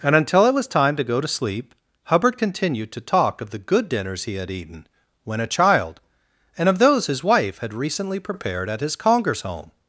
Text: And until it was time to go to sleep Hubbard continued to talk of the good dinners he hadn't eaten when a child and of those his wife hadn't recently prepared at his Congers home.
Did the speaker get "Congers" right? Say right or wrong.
right